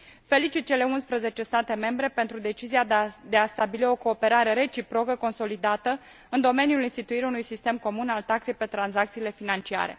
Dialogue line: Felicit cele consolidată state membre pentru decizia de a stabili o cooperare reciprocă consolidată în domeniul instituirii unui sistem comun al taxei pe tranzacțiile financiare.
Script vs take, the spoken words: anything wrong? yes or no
yes